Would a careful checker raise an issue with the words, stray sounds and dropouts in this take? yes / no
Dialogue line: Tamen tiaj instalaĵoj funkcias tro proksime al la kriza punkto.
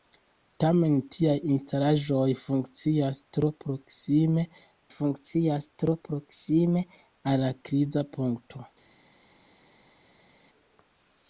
yes